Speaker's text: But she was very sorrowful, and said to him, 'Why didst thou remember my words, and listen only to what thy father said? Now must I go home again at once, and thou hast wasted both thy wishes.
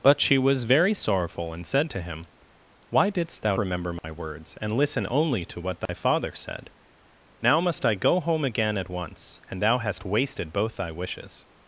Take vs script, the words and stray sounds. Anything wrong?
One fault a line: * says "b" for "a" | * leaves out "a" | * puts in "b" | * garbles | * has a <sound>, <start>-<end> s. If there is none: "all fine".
* has a dropout, 4.0-4.0 s
* has a dropout, 5.9-5.9 s